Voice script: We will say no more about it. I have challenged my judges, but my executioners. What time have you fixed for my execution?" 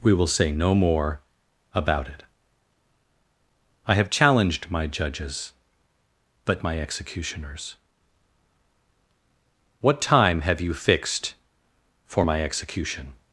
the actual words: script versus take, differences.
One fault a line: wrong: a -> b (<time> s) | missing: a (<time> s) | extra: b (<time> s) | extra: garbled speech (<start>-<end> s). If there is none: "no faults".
no faults